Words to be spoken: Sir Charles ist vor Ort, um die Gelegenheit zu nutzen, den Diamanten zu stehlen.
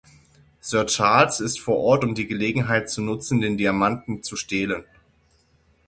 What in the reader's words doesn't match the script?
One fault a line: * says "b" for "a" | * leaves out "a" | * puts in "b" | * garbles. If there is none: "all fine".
all fine